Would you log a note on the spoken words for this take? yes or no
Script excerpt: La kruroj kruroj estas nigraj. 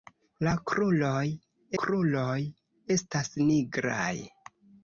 no